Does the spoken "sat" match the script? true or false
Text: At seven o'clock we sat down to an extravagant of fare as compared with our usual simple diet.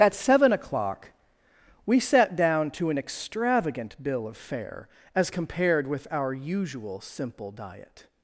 true